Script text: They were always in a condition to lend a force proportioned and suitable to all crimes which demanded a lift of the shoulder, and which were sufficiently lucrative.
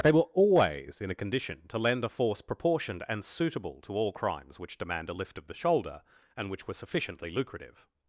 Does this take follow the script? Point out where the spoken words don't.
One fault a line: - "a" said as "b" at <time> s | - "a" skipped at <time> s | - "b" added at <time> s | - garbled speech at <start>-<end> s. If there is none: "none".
- "demanded" said as "demand" at 4.8 s